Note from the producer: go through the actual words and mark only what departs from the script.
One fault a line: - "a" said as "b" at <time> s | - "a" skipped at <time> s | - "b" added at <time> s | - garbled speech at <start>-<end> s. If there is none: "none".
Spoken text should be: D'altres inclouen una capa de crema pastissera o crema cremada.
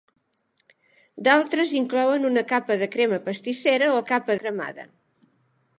- "crema" said as "capa" at 4.1 s